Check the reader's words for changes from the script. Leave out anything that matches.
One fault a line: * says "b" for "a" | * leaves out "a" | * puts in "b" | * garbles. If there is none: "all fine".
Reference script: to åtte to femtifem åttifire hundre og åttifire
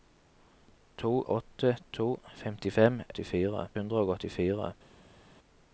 all fine